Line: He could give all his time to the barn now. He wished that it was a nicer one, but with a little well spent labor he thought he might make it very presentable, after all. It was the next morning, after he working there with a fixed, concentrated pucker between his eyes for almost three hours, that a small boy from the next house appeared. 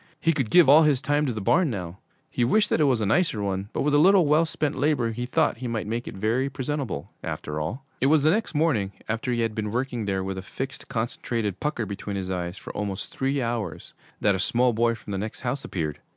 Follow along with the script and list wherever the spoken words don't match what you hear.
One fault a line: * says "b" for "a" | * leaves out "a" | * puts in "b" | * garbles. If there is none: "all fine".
* puts in "had been"